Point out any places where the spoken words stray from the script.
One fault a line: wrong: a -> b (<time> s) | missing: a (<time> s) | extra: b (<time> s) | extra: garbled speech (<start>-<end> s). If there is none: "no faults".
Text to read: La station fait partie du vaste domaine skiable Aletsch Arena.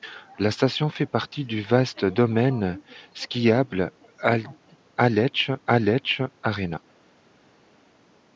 extra: Aletsch (5.7 s)